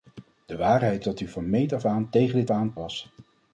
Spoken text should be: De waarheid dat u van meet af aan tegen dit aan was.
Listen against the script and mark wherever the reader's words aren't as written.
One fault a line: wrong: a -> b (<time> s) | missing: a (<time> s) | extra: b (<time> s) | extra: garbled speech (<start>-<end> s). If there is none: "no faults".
no faults